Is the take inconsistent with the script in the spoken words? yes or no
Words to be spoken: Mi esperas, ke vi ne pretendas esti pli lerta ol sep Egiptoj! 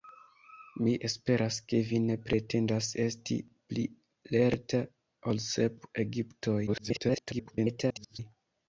yes